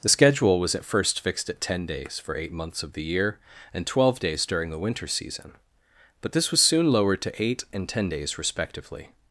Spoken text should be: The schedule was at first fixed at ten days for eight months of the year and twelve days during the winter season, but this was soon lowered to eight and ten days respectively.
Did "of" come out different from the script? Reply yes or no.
no